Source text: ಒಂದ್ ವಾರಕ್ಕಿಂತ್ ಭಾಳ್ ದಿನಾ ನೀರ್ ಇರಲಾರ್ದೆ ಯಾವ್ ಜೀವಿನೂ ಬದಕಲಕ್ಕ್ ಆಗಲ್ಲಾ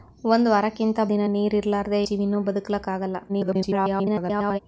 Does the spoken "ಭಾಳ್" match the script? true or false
false